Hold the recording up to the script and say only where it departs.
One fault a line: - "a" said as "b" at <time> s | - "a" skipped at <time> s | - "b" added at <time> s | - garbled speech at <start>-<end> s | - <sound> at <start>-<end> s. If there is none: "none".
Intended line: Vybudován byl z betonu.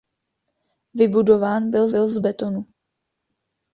- "byl" added at 1.9 s